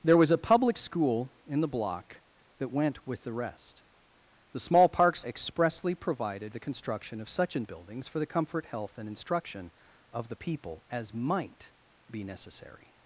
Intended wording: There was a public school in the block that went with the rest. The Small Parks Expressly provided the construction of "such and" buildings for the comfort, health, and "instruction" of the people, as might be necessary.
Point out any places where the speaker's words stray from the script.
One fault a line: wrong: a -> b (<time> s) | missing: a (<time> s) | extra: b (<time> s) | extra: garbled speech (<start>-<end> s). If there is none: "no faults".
no faults